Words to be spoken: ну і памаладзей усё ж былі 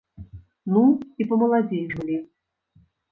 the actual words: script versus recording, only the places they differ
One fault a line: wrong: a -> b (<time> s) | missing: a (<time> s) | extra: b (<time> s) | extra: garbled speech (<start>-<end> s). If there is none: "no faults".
missing: усё (1.8 s)